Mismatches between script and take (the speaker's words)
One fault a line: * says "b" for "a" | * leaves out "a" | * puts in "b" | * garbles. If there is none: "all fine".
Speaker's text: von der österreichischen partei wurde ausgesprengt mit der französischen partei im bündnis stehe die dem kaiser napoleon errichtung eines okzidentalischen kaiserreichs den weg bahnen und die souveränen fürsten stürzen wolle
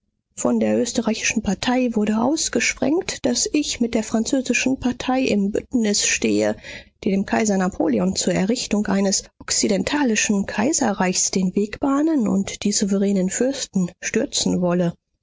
* puts in "daß ich"
* puts in "zur"